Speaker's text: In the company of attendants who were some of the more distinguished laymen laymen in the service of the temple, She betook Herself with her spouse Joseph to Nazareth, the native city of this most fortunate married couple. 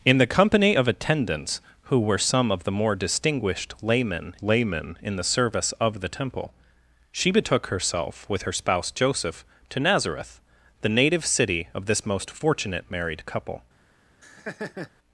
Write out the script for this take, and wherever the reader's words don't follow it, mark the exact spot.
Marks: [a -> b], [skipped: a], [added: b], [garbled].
In the company of attendants who were some of the more distinguished laymen laymen in the service of the temple, She betook Herself with her spouse Joseph to Nazareth, the native city of this most fortunate married couple.